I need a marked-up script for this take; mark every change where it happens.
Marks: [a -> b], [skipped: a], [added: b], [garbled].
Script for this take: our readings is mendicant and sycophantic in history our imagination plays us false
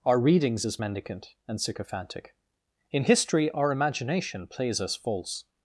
our readings is mendicant and sycophantic in history our imagination plays us false